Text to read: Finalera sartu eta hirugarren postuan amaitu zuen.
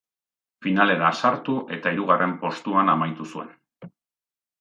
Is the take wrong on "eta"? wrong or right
right